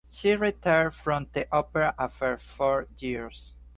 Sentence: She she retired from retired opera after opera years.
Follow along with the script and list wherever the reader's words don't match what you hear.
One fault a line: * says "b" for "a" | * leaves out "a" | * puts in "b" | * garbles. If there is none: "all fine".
* leaves out "she"
* says "the" for "retired"
* says "four" for "opera"